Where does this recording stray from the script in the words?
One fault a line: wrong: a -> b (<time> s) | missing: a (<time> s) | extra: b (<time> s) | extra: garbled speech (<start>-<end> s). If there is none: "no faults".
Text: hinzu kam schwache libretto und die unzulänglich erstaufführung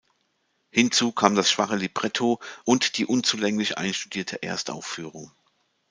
extra: das (1.4 s)
extra: einstudierte (3.8 s)